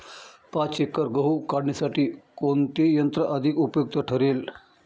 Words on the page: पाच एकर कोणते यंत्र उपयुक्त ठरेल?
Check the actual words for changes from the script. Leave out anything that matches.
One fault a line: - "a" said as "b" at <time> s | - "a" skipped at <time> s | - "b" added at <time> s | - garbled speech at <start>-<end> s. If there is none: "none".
- "गहू काढणीसाठी" added at 1.1 s
- "अधिक" added at 3.2 s